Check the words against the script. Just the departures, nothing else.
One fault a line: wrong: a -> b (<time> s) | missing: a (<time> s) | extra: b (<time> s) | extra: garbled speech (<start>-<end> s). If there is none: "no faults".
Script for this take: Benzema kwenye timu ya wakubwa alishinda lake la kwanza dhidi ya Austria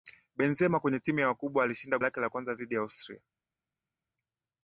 no faults